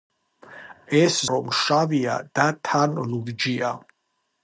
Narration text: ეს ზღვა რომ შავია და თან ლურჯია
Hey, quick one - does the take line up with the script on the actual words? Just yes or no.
no